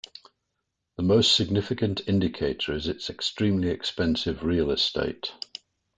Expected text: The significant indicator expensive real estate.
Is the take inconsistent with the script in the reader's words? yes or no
yes